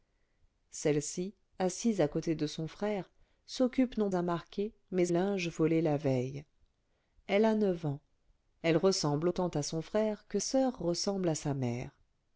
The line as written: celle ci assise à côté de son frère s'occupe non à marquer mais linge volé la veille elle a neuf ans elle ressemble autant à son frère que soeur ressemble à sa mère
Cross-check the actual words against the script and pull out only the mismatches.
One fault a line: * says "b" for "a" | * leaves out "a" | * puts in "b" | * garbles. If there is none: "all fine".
all fine